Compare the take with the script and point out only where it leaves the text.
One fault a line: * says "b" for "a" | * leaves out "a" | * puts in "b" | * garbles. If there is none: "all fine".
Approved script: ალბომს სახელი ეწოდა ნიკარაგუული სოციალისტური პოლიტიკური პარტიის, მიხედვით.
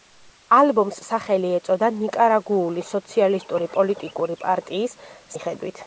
all fine